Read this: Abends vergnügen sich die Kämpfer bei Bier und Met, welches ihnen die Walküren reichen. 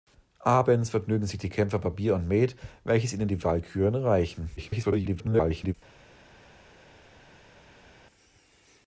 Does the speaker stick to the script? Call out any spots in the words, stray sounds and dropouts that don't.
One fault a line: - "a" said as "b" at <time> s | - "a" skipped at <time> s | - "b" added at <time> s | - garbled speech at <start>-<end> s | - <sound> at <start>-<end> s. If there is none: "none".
- garbled speech at 4.6-5.7 s